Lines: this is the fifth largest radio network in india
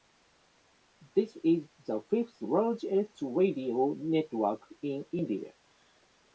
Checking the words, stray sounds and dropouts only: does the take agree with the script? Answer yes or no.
yes